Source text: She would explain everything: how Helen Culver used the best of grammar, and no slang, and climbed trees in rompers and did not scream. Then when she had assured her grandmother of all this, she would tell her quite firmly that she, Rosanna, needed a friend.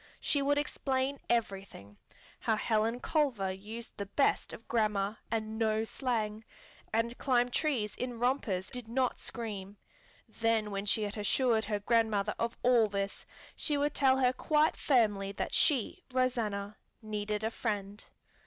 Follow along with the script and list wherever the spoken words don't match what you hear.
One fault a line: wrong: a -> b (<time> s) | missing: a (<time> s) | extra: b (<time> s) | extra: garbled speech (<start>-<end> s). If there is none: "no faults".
missing: and (8.7 s)